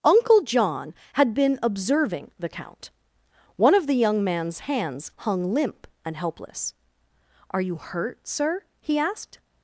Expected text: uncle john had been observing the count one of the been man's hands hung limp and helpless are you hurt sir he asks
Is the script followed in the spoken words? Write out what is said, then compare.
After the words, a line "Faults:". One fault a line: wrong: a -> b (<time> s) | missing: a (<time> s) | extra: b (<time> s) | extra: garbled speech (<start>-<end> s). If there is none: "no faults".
uncle john had been observing the count one of the young man's hands hung limp and helpless are you hurt sir he asked
Faults:
wrong: been -> young (4.0 s)
wrong: asks -> asked (9.0 s)